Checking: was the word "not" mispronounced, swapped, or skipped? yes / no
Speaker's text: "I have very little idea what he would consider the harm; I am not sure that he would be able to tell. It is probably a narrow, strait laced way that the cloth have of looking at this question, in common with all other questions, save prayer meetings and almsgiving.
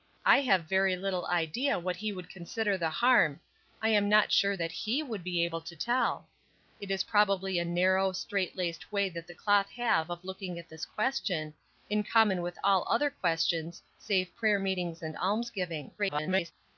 no